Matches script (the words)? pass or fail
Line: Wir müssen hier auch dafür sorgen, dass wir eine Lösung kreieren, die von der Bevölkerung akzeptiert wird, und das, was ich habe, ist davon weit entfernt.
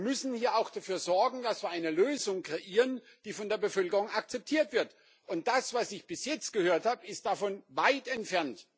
fail